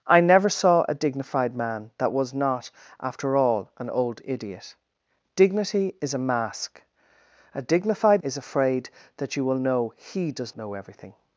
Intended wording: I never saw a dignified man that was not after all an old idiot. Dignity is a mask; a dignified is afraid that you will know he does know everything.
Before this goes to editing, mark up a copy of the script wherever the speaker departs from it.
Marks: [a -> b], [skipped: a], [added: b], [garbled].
I never saw a dignified man that was not after all an old idiot. Dignity is a mask; a dignified is afraid that you will know he does know everything.